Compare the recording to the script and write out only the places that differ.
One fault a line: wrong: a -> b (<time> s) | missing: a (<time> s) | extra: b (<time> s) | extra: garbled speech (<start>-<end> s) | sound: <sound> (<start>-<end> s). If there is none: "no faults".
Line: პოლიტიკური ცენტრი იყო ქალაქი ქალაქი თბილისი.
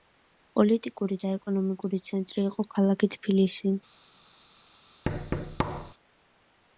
extra: და ეკონომიკური (1.2 s)
missing: ქალაქი (3.1 s)
sound: thud (5.0-5.9 s)